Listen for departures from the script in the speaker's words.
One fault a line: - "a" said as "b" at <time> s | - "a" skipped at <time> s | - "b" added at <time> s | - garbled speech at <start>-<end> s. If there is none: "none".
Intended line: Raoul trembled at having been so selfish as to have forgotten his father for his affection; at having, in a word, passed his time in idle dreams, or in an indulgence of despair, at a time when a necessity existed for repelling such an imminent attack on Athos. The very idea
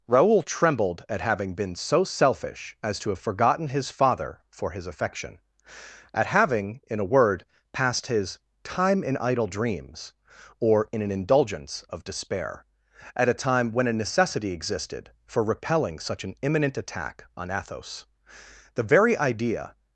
none